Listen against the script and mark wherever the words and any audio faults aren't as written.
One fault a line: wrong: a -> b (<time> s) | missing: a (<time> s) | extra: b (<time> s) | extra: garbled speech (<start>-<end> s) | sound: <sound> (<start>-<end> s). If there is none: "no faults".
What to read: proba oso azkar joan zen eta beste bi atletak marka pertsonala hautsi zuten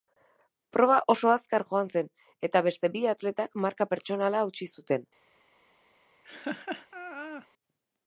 sound: laugh (6.2-7.5 s)